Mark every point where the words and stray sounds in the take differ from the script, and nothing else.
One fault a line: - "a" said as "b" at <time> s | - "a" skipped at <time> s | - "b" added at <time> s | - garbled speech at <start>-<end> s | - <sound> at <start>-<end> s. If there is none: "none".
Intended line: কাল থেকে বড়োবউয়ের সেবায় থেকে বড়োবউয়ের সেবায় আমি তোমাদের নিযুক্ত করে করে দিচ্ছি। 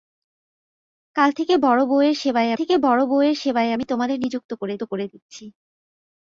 none